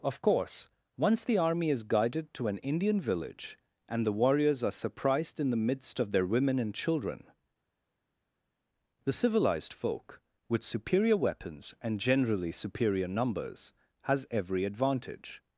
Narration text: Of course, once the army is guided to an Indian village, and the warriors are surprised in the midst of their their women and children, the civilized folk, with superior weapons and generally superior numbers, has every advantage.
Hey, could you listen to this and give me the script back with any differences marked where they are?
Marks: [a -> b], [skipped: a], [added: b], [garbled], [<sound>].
Of course, once the army is guided to an Indian village, and the warriors are surprised in the midst of their [skipped: their] women and children, the civilized folk, with superior weapons and generally superior numbers, has every advantage.